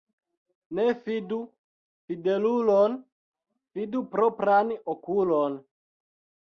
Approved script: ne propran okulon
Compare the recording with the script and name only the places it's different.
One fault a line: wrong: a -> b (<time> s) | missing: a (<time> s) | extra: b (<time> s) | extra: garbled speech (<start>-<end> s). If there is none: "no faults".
extra: fidu fidelulon fidu (1.0 s)